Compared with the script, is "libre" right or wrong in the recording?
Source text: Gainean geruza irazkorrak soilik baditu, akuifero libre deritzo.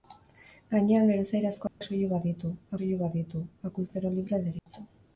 right